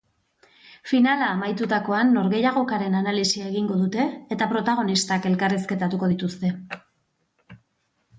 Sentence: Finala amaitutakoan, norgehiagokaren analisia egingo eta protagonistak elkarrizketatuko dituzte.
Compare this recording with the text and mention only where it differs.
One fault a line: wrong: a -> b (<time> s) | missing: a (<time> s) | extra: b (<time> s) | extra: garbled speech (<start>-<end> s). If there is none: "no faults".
extra: dute (3.8 s)